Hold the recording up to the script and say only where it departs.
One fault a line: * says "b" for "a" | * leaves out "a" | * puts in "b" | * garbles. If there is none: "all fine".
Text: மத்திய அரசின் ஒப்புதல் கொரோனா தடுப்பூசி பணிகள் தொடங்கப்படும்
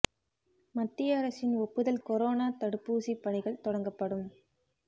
all fine